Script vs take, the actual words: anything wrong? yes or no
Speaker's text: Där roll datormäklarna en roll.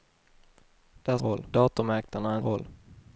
no